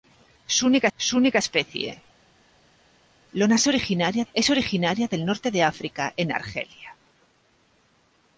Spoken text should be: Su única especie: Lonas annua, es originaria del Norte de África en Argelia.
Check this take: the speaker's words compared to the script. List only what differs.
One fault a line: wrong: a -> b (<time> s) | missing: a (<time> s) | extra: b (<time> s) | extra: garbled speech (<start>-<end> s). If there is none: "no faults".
extra: su única (1.0 s)
wrong: annua -> originaria (3.6 s)